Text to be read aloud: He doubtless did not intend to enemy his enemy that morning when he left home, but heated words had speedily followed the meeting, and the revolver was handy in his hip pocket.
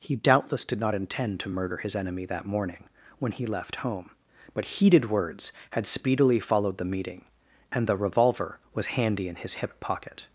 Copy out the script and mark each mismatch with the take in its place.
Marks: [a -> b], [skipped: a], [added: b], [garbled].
He doubtless did not intend to [enemy -> murder] his enemy that morning when he left home, but heated words had speedily followed the meeting, and the revolver was handy in his hip pocket.